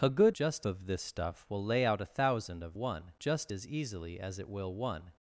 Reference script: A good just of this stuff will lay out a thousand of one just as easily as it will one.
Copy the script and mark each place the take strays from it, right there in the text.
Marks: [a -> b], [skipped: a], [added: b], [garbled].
A good just of this stuff will lay out a thousand of one just as easily as it will one.